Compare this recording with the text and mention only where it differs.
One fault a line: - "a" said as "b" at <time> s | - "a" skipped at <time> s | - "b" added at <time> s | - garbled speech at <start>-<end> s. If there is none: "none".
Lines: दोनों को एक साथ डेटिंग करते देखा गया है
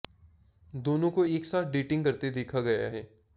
none